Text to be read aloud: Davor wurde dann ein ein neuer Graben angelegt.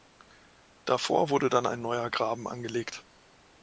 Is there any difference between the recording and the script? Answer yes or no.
yes